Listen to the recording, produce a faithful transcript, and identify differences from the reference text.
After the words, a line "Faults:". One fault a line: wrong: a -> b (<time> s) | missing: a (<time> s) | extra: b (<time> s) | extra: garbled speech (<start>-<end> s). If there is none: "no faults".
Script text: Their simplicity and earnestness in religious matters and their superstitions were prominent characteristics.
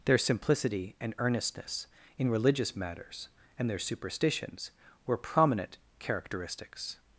Their simplicity and earnestness in religious matters and their superstitions were prominent characteristics.
Faults:
no faults